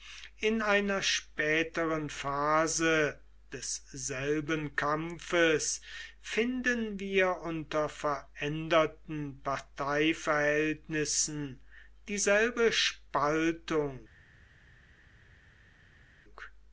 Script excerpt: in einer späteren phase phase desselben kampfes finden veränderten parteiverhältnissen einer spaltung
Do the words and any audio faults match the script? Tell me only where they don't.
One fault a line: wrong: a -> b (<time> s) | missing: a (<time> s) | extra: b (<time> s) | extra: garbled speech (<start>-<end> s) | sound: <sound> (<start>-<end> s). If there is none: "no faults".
missing: phase (3.2 s)
extra: wir unter (7.0 s)
wrong: einer -> dieselbe (12.1 s)